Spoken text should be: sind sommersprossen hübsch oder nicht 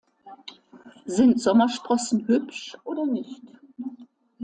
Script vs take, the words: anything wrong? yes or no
no